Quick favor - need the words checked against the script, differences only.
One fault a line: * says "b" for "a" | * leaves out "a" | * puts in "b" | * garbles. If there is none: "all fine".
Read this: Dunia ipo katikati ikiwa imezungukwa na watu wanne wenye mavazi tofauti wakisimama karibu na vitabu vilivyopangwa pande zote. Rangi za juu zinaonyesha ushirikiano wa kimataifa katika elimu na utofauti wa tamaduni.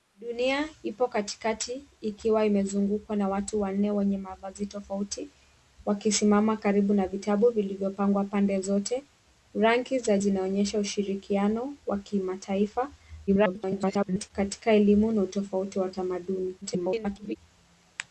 * leaves out "juu"
* garbles
* garbles